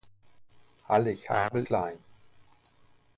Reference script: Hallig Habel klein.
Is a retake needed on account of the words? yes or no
no